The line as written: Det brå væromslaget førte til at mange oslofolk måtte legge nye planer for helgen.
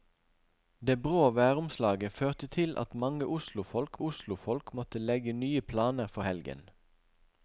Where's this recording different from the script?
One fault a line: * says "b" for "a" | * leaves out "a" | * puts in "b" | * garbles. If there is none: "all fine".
* puts in "oslofolk"